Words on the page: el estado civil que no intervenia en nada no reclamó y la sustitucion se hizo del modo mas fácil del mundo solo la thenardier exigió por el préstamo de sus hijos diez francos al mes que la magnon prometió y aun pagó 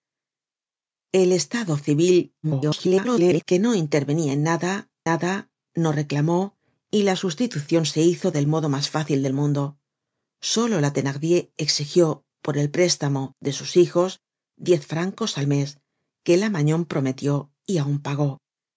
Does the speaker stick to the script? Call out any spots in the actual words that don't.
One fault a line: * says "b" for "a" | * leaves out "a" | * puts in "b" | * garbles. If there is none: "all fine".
* garbles
* puts in "nada"